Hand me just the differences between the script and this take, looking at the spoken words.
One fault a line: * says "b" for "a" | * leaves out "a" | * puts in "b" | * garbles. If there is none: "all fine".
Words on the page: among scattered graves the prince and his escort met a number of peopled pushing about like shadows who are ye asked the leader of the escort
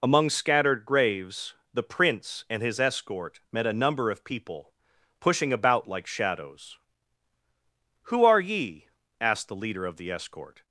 * says "people" for "peopled"